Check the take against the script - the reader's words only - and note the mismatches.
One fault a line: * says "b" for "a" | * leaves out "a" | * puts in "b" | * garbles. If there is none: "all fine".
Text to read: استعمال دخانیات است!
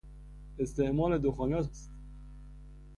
all fine